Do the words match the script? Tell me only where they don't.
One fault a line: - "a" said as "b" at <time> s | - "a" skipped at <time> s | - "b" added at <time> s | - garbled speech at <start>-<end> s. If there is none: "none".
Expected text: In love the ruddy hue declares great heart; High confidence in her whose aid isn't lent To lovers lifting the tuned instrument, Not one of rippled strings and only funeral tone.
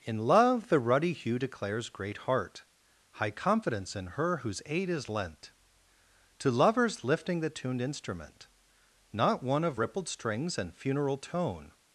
- "isn't" said as "is" at 4.9 s
- "only" skipped at 10.7 s